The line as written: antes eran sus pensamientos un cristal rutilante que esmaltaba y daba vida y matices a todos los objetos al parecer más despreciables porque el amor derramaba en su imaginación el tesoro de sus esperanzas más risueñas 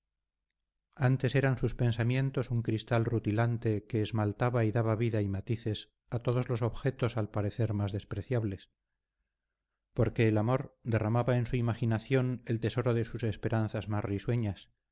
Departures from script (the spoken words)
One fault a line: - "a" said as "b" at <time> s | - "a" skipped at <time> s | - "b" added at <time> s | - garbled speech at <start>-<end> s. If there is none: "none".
none